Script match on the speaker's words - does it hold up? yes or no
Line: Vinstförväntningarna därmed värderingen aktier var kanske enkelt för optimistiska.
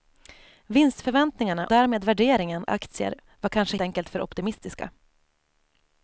yes